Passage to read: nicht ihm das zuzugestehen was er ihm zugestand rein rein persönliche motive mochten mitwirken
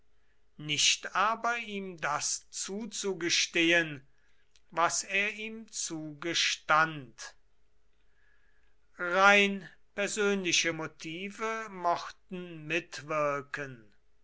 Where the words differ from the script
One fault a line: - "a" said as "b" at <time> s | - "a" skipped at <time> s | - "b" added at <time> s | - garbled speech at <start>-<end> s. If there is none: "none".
- "aber" added at 1.1 s
- "rein" skipped at 9.7 s